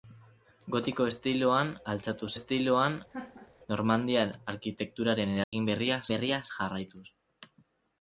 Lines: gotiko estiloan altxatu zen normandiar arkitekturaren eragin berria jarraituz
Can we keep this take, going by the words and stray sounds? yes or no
no